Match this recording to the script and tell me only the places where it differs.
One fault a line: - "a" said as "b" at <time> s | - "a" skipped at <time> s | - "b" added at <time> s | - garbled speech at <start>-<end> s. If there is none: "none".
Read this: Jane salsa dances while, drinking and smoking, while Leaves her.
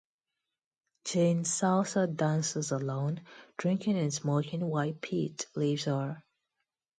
- "while" said as "alone" at 2.7 s
- "Pete" added at 5.0 s